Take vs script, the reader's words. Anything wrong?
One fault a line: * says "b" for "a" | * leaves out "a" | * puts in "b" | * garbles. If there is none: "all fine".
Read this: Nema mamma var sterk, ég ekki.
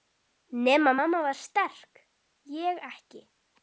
all fine